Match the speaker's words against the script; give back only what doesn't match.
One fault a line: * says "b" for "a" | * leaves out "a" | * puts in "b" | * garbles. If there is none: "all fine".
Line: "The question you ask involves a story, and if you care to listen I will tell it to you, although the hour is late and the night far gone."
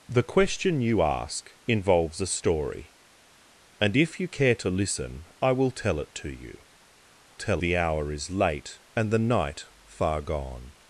* says "tell" for "although"